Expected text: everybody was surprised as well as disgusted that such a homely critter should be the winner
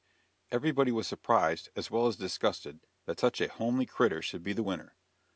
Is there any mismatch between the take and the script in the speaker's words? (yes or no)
no